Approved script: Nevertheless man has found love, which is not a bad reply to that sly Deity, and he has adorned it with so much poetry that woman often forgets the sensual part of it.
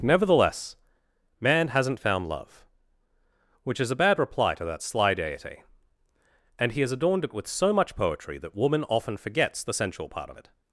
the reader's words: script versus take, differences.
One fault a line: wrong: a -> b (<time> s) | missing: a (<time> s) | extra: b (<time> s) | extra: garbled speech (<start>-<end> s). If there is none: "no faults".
wrong: has -> hasn't (1.7 s)
missing: not (3.9 s)